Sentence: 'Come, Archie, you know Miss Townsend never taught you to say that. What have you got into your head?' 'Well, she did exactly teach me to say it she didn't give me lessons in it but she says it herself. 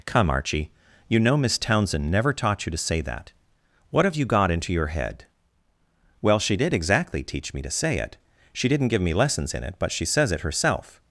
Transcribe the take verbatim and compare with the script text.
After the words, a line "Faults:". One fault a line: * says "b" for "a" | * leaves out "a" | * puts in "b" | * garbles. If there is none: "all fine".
'Come, Archie, you know Miss Townsend never taught you to say that. What have you got into your head?' 'Well, she did exactly teach me to say it she didn't give me lessons in it but she says it herself.
Faults:
all fine